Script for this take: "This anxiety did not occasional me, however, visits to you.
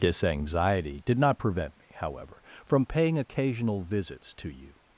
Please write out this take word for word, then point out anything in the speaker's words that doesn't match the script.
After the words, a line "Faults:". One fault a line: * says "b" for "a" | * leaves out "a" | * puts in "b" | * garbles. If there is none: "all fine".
"This anxiety did not prevent me, however, from paying occasional visits to you.
Faults:
* says "prevent" for "occasional"
* puts in "from paying occasional"